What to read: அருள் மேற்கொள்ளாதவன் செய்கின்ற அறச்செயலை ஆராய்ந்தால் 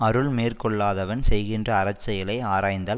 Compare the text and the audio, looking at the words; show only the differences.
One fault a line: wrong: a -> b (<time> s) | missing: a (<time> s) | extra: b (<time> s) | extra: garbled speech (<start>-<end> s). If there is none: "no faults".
no faults